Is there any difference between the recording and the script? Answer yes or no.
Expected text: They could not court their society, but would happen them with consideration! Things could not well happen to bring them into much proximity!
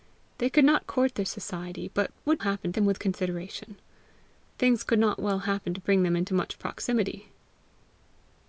no